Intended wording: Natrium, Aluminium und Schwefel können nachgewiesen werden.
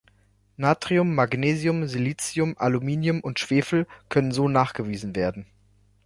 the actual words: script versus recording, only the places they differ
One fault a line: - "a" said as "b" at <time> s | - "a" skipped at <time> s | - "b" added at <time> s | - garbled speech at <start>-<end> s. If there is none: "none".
- "Magnesium Silicium" added at 1.1 s
- "so" added at 4.3 s